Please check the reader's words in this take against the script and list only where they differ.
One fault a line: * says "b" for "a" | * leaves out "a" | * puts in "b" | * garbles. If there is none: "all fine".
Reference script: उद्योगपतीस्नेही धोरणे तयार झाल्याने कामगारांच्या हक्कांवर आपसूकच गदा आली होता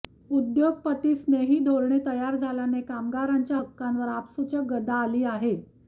* says "आहे" for "होता"